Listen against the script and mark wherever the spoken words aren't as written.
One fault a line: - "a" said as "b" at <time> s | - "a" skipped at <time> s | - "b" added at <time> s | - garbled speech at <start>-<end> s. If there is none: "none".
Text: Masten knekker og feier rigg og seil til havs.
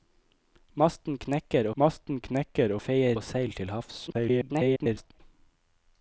- "masten knekker" added at 1.8 s
- "rigg" skipped at 3.2 s
- garbled speech at 4.1-5.2 s